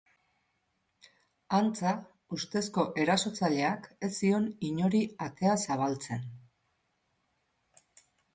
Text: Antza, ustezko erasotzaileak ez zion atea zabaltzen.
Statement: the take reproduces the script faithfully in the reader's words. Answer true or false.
false